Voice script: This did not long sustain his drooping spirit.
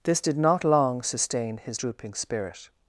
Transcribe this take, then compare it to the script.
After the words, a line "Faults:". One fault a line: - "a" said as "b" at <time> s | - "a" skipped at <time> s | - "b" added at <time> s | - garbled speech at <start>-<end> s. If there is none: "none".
This did not long sustain his drooping spirit.
Faults:
none